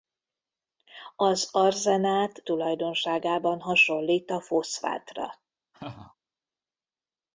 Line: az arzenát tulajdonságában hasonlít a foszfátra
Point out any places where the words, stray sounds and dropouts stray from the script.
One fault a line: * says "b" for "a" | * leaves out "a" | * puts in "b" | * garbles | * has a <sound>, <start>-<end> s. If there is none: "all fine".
* has a laugh, 5.7-6.2 s